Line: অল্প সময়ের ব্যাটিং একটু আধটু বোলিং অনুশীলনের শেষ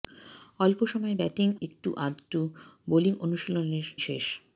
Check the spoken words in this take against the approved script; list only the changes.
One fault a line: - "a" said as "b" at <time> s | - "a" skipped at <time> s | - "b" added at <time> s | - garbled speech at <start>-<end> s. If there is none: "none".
none